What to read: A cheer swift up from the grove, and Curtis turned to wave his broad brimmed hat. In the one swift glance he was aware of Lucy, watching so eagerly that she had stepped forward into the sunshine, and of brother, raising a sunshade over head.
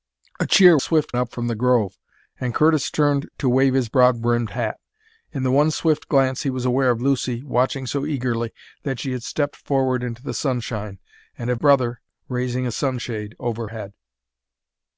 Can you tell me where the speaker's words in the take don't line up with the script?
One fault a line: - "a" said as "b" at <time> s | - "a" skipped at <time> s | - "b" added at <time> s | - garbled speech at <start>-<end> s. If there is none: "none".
none